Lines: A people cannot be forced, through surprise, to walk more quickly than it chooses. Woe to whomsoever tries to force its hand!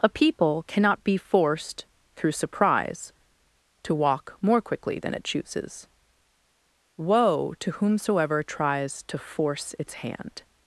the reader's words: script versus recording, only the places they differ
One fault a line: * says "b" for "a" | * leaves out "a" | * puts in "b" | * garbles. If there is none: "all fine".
all fine